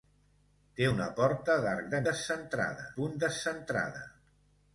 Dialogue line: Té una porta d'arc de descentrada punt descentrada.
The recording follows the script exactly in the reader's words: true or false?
true